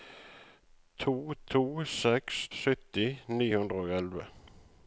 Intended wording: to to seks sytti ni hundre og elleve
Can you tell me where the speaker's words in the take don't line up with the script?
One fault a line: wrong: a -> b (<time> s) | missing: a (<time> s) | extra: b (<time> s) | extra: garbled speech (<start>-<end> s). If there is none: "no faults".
no faults